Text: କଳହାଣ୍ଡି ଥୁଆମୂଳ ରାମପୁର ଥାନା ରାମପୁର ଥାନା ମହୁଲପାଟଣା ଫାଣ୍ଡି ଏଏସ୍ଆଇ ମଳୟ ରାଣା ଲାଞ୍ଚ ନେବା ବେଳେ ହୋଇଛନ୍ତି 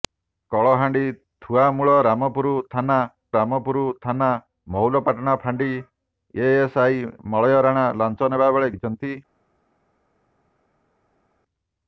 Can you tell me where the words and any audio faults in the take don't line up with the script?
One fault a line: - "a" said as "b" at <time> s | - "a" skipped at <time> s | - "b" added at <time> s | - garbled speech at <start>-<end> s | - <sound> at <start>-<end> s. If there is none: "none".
none